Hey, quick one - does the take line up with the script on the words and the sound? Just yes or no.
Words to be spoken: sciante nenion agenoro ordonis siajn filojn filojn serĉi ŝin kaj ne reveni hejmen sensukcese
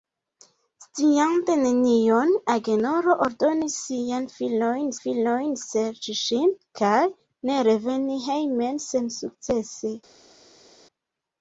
yes